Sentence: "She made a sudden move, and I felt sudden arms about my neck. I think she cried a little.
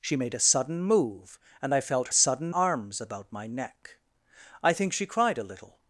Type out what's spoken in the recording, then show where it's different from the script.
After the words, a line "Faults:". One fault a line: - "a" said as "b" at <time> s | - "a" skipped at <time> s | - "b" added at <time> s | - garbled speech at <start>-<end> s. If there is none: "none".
"She made a sudden move, and I felt sudden arms about my neck. I think she cried a little.
Faults:
none